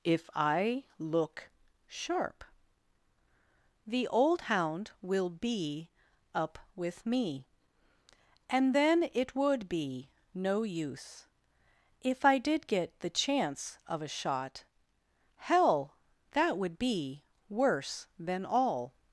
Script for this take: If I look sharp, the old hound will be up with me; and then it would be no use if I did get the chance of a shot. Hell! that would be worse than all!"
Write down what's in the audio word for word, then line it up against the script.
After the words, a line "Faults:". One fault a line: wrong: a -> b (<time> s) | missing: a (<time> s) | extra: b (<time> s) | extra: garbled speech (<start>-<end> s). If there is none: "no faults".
If I look sharp, the old hound will be up with me; and then it would be no use if I did get the chance of a shot. Hell! that would be worse than all!"
Faults:
no faults